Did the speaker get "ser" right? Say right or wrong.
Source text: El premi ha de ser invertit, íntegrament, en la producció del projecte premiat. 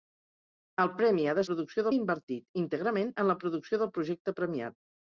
wrong